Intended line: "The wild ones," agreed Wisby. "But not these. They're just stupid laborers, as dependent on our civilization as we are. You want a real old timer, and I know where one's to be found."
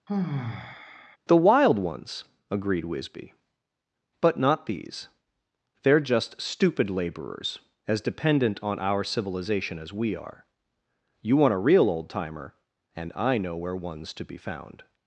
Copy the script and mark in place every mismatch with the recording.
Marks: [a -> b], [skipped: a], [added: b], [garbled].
"The wild ones," agreed Wisby. "But not these. They're just stupid laborers, as dependent on our civilization as we are. You want a real old timer, and I know where one's to be found."